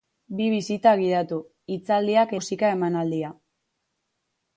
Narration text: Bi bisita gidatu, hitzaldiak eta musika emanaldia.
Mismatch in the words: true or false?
true